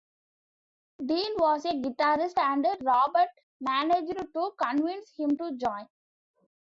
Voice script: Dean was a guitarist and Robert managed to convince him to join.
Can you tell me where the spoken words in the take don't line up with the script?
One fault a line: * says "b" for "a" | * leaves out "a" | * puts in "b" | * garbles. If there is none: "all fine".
all fine